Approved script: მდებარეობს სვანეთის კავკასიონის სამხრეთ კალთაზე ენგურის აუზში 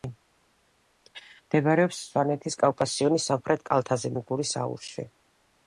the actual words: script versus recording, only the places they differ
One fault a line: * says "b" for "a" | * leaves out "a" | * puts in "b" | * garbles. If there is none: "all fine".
all fine